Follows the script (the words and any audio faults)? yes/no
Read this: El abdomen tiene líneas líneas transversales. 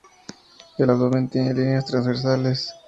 no